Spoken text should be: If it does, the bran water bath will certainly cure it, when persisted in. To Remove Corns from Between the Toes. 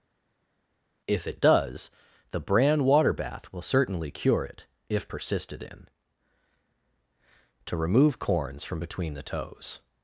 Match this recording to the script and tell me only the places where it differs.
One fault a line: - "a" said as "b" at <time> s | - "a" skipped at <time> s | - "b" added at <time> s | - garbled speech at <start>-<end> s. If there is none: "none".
- "when" said as "if" at 4.9 s